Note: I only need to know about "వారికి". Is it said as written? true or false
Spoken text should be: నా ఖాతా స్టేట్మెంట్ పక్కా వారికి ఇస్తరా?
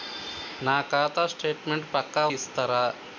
false